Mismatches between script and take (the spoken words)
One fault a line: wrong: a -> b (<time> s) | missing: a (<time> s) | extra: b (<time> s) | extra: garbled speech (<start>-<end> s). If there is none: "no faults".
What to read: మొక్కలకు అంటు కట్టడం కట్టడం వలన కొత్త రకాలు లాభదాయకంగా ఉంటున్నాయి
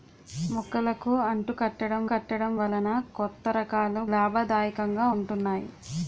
no faults